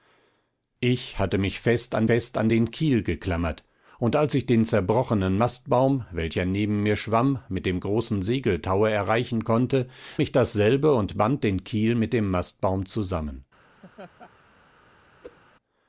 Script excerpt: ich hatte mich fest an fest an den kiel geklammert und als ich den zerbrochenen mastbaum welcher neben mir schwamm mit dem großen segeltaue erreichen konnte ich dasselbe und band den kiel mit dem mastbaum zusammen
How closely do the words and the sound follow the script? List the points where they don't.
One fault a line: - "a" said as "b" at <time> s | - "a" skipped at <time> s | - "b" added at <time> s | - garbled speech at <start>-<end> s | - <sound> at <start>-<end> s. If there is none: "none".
- laugh at 13.8-14.3 s
- whoosh at 15.2-15.4 s